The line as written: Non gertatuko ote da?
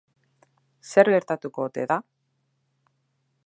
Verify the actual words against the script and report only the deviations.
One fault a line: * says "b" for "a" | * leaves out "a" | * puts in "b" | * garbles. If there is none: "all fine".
* says "Zer" for "Non"